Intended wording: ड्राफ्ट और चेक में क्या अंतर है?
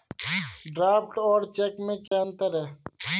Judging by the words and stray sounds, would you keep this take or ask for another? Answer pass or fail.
fail